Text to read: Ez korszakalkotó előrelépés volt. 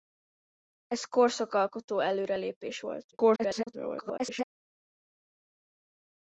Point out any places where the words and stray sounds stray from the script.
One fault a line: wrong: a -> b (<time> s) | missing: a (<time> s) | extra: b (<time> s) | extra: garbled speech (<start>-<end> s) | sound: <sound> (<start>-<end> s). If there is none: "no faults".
extra: garbled speech (3.1-4.5 s)